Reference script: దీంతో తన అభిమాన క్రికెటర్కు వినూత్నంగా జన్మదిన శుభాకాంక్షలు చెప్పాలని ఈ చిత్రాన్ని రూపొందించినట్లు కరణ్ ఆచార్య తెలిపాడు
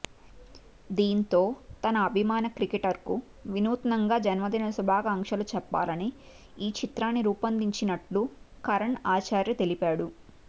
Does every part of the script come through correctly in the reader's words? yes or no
yes